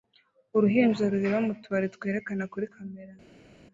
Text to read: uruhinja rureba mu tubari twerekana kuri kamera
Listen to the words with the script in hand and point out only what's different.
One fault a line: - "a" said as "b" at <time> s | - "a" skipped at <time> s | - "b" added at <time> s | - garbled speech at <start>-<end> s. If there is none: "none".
none